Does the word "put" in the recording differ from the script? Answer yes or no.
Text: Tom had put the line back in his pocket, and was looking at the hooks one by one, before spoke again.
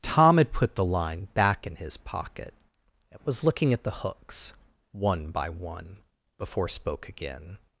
no